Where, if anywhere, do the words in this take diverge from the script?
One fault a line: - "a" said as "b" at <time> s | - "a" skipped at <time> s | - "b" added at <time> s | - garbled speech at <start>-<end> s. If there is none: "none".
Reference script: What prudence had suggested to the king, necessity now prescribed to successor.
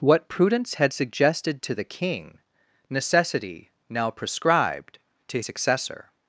none